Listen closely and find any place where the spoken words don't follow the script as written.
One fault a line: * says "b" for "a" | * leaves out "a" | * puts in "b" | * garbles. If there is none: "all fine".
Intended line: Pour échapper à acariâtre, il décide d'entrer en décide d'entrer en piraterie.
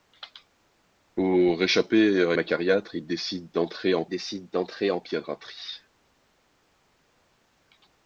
all fine